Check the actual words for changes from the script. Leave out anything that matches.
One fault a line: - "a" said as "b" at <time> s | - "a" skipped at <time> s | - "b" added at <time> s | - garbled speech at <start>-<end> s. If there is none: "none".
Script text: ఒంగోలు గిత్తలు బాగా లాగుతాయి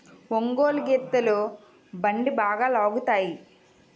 - "బండి" added at 1.9 s